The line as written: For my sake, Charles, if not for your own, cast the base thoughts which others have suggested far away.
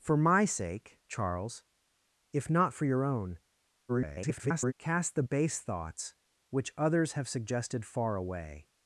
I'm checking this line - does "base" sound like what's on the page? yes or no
yes